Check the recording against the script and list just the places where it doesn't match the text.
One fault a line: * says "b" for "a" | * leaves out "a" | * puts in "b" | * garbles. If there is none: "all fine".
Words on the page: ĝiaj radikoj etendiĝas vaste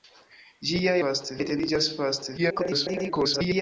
* says "vaste" for "radikoj"
* garbles